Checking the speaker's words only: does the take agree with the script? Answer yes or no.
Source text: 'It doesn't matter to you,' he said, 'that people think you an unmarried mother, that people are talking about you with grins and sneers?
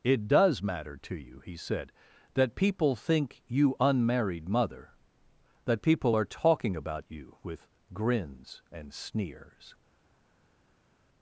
no